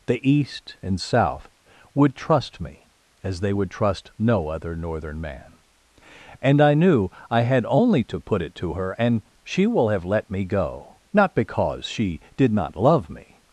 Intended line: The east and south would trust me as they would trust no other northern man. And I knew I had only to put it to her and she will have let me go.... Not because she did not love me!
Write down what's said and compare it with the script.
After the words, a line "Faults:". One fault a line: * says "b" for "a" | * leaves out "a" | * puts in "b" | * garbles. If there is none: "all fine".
The east and south would trust me as they would trust no other northern man. And I knew I had only to put it to her and she will have let me go.... Not because she did not love me!
Faults:
all fine